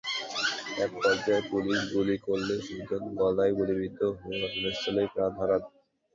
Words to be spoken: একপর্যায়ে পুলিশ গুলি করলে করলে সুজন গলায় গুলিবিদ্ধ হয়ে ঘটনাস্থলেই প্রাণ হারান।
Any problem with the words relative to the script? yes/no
yes